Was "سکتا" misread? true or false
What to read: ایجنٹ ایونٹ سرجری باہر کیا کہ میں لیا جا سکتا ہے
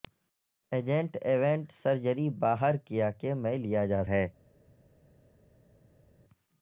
true